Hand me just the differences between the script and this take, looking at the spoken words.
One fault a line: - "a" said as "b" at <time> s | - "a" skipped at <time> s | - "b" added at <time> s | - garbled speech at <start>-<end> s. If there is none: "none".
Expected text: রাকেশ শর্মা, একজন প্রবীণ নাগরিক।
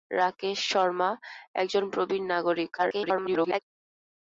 - garbled speech at 2.8-3.6 s